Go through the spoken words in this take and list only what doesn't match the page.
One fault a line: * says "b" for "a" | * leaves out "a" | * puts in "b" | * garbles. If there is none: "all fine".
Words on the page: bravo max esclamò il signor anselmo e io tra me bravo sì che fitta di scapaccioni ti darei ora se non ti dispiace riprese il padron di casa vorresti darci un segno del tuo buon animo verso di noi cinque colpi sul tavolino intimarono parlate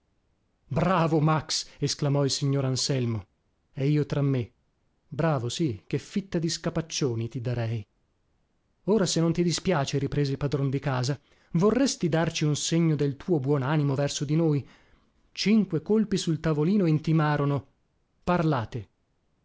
all fine